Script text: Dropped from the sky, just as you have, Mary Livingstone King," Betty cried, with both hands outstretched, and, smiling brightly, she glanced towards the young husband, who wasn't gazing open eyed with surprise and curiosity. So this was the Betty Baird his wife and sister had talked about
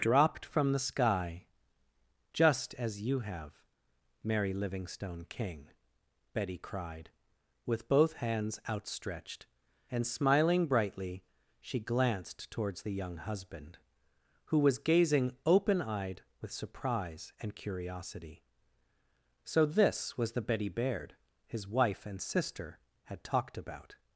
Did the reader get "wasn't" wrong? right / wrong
wrong